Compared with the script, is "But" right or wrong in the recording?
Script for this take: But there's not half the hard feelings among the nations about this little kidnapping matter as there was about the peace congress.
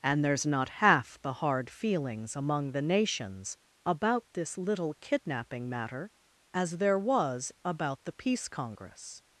wrong